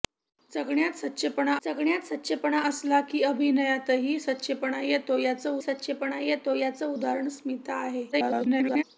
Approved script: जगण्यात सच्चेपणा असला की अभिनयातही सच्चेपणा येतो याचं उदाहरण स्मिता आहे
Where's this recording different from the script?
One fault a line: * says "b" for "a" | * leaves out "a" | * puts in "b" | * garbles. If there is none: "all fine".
* puts in "जगण्यात सच्चेपणा"
* puts in "सच्चेपणा येतो याचं"
* garbles